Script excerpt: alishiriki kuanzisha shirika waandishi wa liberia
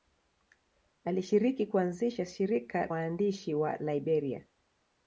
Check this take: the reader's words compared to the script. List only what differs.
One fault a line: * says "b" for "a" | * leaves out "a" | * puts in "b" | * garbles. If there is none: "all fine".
all fine